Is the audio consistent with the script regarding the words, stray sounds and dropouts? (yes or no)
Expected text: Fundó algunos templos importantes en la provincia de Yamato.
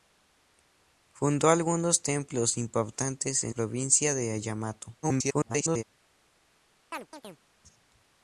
no